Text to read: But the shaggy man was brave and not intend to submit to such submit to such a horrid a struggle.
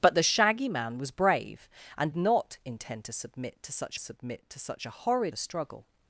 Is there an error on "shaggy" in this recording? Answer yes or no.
no